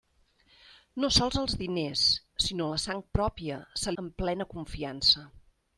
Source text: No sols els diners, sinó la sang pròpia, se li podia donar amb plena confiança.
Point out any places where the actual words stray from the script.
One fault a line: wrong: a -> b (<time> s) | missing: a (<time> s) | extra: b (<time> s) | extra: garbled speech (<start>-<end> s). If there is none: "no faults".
missing: li podia donar (3.9 s)